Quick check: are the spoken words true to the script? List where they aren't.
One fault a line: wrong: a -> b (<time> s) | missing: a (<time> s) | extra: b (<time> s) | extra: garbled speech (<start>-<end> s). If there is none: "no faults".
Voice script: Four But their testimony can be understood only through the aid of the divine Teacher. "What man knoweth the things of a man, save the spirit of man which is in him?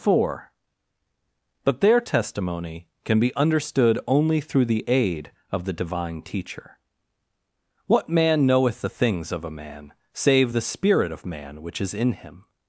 no faults